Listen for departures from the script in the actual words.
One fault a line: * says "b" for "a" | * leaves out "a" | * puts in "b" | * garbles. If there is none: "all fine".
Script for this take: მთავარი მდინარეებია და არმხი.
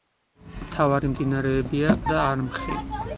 all fine